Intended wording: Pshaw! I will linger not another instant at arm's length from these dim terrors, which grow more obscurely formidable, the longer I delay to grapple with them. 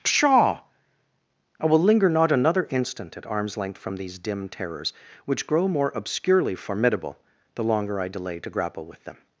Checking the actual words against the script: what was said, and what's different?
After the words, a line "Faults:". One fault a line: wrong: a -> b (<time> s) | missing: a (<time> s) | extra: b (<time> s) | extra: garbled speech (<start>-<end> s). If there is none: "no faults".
Pshaw! I will linger not another instant at arm's length from these dim terrors, which grow more obscurely formidable, the longer I delay to grapple with them.
Faults:
no faults